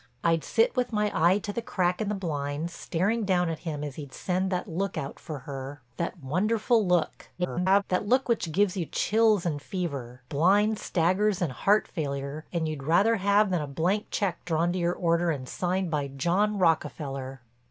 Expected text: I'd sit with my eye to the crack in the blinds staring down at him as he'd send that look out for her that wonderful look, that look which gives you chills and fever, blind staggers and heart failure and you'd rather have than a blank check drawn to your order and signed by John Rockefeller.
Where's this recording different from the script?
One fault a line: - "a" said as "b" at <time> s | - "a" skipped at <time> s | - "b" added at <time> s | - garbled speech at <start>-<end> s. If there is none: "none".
- garbled speech at 7.4-7.8 s